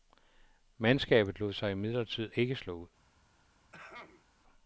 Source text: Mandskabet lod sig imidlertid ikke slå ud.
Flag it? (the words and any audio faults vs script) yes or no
yes